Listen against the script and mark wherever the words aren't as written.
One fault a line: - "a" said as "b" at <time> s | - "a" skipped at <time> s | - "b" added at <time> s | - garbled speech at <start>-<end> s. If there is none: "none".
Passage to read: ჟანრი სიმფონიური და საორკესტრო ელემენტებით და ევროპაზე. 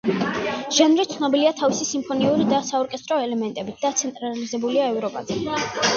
- "ცნობილია თავისი" added at 1.1 s
- "ცენტრალიზებულია" added at 4.0 s